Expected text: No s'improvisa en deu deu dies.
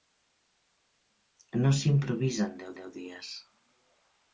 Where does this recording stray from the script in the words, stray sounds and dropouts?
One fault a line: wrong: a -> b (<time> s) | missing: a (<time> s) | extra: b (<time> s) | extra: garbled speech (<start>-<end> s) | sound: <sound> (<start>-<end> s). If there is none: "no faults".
no faults